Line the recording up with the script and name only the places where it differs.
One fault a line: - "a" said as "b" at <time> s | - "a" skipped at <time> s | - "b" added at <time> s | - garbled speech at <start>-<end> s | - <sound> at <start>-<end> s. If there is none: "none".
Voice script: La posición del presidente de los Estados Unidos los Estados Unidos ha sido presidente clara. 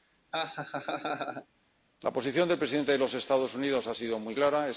- laugh at 0.3-1.5 s
- "los Estados Unidos" skipped at 3.9 s
- "presidente" said as "muy" at 4.2 s